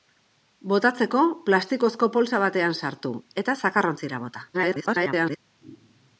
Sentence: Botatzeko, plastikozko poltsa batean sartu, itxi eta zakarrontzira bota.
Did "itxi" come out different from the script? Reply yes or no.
yes